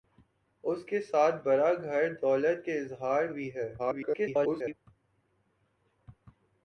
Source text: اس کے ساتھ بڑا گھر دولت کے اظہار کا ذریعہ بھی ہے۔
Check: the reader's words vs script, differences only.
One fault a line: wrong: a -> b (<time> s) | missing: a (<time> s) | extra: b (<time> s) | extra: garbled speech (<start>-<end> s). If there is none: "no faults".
missing: کا ذریعہ (3.3 s)
extra: garbled speech (3.8-4.7 s)